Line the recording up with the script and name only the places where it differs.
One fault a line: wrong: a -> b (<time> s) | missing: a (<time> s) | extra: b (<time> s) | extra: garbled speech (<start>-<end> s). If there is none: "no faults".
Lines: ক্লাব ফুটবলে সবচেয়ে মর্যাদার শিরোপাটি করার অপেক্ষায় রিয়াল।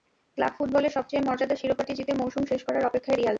extra: জিতে মৌসুম শেষ (2.0 s)